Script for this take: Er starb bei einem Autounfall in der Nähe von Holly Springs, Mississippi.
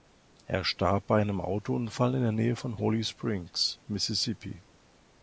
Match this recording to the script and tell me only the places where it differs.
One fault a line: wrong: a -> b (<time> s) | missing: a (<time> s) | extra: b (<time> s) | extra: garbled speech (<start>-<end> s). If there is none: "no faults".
no faults